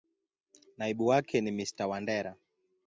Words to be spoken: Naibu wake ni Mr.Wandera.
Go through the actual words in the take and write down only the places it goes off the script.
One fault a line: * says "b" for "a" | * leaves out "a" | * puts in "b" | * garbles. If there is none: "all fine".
all fine